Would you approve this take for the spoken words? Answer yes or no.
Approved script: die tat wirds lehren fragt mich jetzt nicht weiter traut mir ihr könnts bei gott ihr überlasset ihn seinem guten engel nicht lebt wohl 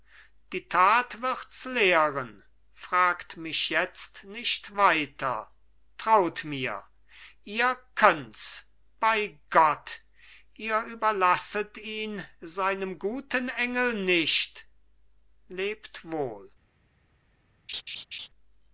yes